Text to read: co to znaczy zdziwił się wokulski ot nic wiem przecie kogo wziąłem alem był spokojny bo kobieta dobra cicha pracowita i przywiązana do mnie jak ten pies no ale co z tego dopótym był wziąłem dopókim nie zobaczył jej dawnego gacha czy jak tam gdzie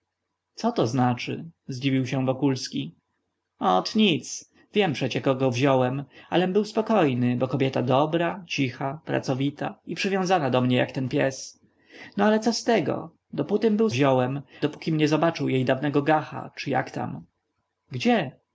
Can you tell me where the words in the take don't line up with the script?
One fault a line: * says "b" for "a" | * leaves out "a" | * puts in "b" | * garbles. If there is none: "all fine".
all fine